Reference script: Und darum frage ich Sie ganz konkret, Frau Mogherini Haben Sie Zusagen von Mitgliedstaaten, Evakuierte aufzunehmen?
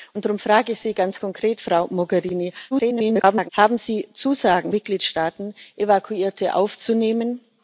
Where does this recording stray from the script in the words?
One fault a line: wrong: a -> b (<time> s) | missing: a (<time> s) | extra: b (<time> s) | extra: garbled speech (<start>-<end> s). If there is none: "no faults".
extra: garbled speech (2.7-3.5 s)
missing: von (4.7 s)